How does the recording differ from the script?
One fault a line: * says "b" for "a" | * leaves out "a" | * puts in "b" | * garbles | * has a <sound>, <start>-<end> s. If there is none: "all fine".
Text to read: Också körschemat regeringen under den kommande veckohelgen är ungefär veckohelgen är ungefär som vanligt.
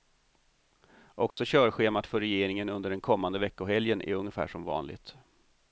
* has a dropout, 1.3-1.4 s
* puts in "för"
* leaves out "veckohelgen är ungefär"